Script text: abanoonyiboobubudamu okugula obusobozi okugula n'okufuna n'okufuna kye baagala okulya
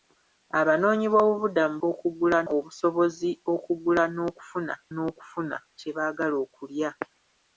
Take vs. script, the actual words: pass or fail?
pass